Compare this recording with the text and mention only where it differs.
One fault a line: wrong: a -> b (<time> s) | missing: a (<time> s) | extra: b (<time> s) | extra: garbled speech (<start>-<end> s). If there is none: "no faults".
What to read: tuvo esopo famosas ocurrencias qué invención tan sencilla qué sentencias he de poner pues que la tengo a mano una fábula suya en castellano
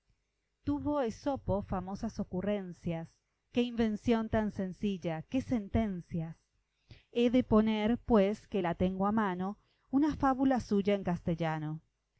no faults